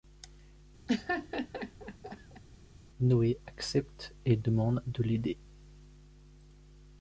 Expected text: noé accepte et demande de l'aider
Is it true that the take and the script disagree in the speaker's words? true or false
false